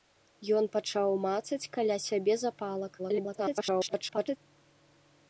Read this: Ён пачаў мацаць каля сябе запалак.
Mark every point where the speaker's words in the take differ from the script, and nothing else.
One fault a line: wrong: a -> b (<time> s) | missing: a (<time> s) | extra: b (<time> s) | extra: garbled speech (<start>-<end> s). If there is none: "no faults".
extra: garbled speech (3.0-4.4 s)